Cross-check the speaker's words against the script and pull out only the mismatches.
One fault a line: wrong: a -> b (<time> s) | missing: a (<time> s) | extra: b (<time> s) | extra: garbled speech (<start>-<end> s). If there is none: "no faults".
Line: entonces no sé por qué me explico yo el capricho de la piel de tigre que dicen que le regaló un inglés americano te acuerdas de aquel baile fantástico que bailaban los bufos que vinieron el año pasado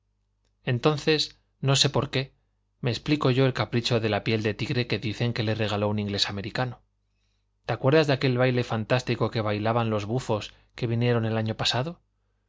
no faults